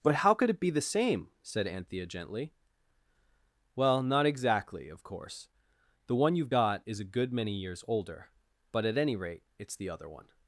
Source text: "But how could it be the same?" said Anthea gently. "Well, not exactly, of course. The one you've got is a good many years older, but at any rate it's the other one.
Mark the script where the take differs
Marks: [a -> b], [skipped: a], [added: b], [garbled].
"But how could it be the same?" said Anthea gently. "Well, not exactly, of course. The one you've got is a good many years older, but at any rate it's the other one.